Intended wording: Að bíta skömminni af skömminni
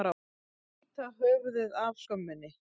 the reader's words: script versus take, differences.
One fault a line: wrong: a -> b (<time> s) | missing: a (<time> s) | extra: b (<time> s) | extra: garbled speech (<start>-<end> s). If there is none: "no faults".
wrong: skömminni -> höfuðið (1.2 s)